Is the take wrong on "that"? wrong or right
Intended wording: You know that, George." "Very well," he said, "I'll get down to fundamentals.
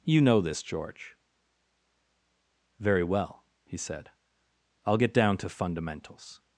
wrong